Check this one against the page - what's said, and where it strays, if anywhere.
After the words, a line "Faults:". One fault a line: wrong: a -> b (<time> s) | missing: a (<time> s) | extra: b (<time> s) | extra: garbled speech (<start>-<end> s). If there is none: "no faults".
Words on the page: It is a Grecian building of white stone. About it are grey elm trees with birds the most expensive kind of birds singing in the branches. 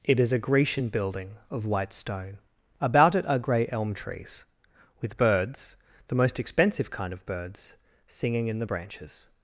It is a Grecian building of white stone. About it are grey elm trees with birds the most expensive kind of birds singing in the branches.
Faults:
no faults